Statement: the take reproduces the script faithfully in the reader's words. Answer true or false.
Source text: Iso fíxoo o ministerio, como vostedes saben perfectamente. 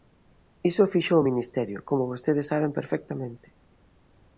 true